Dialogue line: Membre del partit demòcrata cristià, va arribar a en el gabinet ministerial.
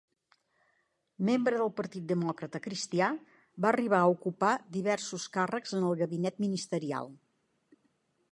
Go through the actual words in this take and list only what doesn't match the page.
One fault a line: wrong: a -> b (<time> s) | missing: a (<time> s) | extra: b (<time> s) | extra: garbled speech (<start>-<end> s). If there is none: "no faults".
extra: ocupar diversos càrrecs (4.2 s)